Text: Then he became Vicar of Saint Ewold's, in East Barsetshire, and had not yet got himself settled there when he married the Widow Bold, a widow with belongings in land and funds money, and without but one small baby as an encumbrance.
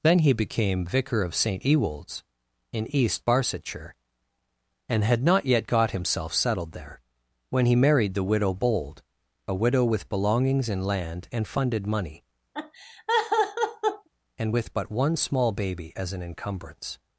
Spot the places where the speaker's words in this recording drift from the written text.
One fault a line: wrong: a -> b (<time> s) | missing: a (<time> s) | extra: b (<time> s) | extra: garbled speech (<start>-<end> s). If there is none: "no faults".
wrong: funds -> funded (11.5 s)
wrong: without -> with (14.5 s)